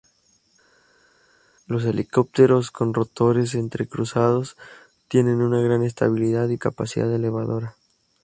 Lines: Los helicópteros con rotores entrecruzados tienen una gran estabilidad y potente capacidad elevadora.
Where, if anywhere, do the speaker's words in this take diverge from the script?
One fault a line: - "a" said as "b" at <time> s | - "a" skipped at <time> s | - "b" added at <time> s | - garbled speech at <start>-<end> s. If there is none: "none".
- "potente" skipped at 6.6 s